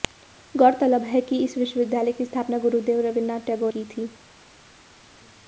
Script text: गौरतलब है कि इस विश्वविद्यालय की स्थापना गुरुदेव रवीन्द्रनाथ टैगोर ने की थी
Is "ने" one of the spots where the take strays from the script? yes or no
yes